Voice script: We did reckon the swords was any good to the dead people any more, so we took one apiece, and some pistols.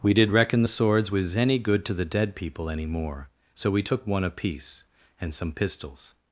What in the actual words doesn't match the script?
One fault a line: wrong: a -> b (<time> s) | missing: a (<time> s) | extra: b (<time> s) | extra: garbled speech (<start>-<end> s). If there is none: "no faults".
no faults